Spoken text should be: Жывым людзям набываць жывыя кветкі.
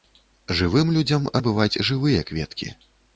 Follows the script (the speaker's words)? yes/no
yes